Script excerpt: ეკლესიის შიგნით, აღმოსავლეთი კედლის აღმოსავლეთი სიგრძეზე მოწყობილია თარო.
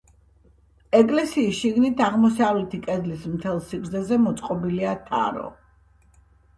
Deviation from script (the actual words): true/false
true